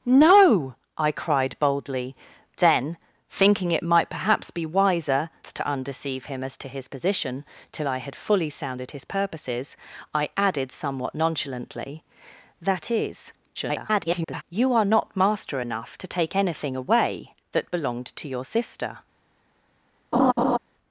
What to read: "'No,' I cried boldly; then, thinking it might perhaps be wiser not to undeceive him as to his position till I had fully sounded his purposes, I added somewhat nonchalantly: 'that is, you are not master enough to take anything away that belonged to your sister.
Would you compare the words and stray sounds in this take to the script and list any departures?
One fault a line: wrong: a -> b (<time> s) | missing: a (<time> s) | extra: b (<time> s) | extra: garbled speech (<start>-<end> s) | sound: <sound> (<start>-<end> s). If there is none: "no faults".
missing: not (5.3 s)
extra: garbled speech (13.5-14.4 s)
sound: laugh (20.1-20.6 s)